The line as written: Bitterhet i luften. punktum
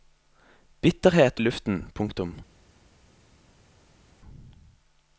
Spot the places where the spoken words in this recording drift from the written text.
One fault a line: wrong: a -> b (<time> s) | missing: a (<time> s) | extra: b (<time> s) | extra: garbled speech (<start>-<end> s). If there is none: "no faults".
no faults